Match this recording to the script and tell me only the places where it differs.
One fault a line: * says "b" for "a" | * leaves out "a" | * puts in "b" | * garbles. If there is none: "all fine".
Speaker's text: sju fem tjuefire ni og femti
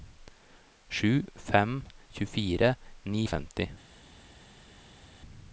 all fine